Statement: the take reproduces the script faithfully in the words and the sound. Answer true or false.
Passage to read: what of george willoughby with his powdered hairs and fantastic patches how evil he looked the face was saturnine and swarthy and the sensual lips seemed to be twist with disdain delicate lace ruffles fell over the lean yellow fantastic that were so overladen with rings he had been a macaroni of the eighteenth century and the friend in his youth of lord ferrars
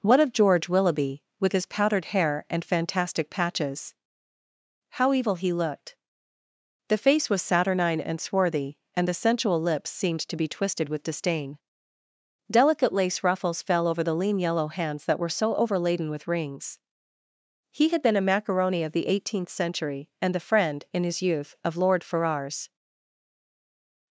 false